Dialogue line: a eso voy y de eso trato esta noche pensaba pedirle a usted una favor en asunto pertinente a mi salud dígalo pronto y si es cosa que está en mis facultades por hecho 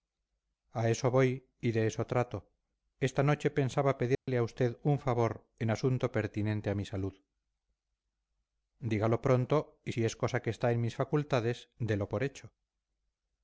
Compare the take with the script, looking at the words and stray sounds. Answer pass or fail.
fail